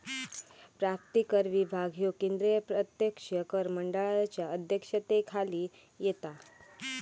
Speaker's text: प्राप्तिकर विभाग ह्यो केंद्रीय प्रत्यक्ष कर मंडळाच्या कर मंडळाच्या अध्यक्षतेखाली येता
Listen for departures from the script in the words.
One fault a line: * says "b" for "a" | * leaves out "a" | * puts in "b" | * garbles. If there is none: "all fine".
* leaves out "कर मंडळाच्या"